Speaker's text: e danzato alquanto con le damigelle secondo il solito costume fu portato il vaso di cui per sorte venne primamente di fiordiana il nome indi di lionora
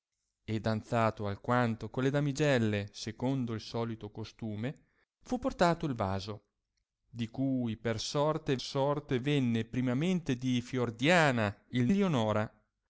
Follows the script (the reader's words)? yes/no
no